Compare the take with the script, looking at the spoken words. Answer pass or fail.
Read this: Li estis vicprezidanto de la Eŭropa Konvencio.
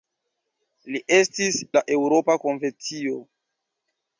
fail